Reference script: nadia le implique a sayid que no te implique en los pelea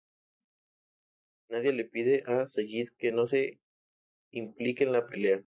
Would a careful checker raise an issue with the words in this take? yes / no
yes